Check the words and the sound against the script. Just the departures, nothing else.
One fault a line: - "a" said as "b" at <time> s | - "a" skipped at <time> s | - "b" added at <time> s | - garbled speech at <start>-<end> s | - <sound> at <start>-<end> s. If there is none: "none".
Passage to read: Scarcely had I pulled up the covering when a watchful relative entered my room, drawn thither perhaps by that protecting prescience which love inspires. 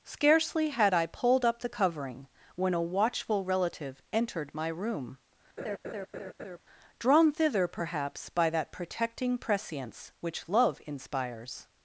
- laugh at 5.6-6.6 s